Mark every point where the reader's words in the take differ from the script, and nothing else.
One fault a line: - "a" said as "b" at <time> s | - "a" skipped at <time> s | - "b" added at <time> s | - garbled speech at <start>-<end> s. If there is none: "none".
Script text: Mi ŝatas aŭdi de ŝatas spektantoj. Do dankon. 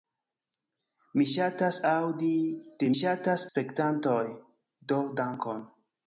none